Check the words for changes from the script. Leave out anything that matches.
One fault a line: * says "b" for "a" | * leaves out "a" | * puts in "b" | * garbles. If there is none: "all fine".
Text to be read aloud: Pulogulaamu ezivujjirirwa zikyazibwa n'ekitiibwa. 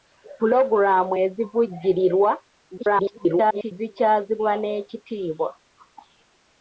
* garbles